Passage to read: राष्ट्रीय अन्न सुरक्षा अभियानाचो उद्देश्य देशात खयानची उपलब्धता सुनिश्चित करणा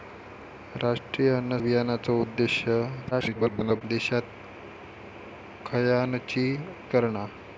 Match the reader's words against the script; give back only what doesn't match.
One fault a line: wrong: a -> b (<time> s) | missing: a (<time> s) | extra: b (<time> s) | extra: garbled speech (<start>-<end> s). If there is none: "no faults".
missing: सुरक्षा (1.6 s)
extra: garbled speech (3.1-3.8 s)
missing: उपलब्धता सुनिश्चित (6.4 s)